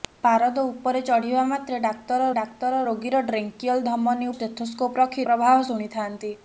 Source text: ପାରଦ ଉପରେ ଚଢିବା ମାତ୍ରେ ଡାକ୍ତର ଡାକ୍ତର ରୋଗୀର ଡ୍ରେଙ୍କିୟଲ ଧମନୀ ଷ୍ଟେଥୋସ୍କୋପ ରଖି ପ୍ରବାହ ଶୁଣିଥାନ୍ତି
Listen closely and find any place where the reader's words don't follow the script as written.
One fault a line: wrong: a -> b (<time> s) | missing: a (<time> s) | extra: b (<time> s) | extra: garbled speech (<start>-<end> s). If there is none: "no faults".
no faults